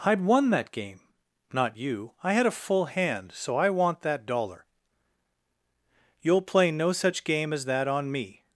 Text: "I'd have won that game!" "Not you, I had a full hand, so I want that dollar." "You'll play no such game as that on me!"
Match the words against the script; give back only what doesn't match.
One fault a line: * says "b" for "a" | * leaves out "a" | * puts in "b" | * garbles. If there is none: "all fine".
* leaves out "have"